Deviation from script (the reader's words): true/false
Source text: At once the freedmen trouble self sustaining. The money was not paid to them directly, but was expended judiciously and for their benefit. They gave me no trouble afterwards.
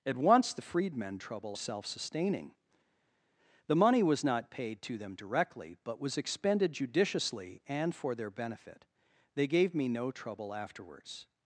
false